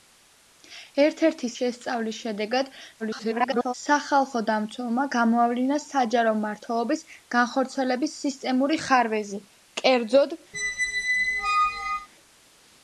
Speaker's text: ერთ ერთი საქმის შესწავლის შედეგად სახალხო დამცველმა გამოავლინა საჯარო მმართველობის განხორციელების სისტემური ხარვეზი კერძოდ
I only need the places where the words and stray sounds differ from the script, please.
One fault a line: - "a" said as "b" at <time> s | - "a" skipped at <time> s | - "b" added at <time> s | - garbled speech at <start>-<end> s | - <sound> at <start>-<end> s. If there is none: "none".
- "საქმის" skipped at 1.5 s
- garbled speech at 3.0-3.7 s
- squeak at 10.5-12.1 s